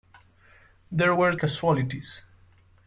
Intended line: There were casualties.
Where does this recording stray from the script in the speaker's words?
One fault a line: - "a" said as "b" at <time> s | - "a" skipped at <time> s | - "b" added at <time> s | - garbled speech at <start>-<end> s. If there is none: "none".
none